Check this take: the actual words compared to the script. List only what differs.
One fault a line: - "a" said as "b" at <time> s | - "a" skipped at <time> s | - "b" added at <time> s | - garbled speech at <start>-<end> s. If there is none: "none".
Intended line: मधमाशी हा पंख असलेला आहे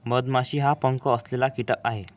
- "कीटक" added at 1.5 s